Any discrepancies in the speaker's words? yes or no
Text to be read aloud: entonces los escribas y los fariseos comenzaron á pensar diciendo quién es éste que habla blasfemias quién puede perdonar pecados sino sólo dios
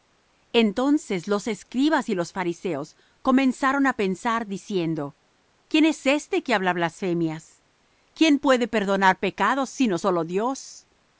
no